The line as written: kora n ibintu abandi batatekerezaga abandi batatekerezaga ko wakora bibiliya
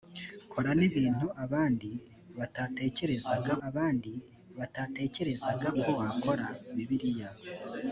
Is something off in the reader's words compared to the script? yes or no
no